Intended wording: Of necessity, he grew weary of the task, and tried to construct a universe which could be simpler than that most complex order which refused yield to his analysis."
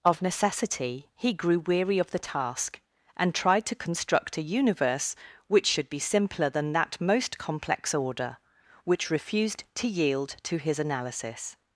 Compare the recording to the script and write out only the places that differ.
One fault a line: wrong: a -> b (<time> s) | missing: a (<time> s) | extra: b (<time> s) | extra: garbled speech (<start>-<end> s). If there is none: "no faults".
wrong: could -> should (5.7 s)
extra: to (9.8 s)